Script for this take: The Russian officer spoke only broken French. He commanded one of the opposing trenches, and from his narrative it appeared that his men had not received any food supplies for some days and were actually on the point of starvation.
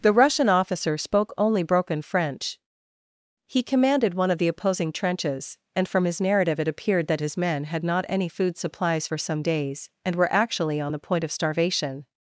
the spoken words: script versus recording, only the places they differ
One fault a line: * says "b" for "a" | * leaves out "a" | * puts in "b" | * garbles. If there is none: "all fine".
* leaves out "received"